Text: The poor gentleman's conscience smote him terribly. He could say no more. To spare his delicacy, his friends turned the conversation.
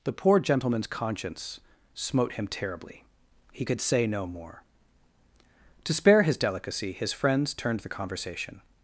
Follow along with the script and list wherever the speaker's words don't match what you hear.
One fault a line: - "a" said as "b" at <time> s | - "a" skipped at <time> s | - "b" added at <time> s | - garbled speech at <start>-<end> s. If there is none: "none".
none